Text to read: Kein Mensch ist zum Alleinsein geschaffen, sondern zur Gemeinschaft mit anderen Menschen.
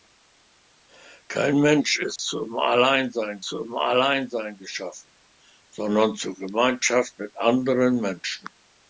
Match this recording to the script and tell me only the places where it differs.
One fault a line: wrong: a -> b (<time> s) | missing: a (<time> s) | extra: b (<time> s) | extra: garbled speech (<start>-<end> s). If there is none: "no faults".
extra: zum Alleinsein (3.4 s)